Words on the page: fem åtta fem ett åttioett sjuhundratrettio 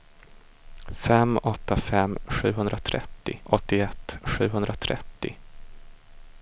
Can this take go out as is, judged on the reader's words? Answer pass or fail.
fail